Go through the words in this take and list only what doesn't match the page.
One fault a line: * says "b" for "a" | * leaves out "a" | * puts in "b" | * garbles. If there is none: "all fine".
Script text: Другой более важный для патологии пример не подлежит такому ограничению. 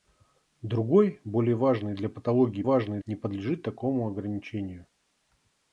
* says "важный" for "пример"